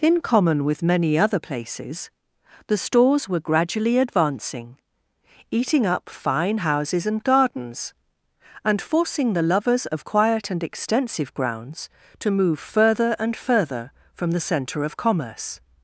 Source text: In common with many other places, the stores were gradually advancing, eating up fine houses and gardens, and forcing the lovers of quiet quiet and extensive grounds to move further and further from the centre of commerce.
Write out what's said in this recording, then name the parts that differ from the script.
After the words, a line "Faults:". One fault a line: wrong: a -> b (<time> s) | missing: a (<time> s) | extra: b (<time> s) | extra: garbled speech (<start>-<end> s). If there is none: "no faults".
In common with many other places, the stores were gradually advancing, eating up fine houses and gardens, and forcing the lovers of quiet and extensive grounds to move further and further from the centre of commerce.
Faults:
missing: quiet (10.5 s)